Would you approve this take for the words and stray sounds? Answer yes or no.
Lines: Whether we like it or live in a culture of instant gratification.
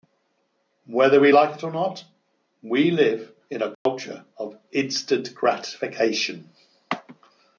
no